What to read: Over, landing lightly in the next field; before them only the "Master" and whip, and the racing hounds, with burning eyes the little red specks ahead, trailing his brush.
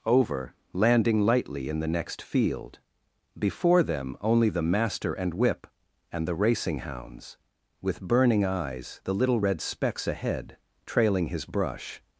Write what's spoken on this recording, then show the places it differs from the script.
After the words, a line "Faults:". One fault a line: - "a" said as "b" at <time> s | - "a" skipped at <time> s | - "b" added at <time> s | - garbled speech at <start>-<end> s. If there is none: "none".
Over, landing lightly in the next field; before them only the "Master" and whip, and the racing hounds, with burning eyes the little red specks ahead, trailing his brush.
Faults:
none